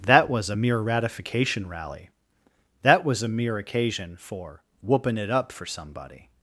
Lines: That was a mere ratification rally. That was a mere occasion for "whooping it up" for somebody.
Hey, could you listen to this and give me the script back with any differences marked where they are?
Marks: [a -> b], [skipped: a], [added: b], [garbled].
That was a mere ratification rally. That was a mere occasion for "whooping it up" for somebody.